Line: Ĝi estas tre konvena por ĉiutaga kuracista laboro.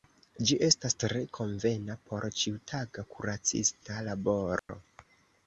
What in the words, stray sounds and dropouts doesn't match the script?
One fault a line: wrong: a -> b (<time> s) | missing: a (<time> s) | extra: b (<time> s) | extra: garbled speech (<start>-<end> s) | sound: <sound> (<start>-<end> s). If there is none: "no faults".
sound: dropout (4.6-4.7 s)